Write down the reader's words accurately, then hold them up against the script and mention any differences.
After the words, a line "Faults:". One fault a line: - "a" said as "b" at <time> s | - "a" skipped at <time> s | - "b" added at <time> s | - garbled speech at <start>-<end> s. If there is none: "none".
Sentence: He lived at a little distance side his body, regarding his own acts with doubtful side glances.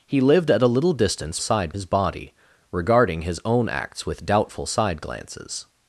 He lived at a little distance side his body, regarding his own acts with doubtful side glances.
Faults:
none